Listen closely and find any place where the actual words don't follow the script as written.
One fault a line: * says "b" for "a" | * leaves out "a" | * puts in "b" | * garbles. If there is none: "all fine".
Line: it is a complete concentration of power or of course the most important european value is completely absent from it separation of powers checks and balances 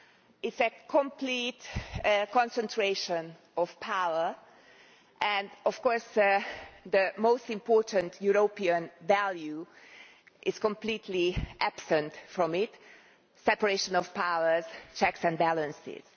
* says "and" for "or"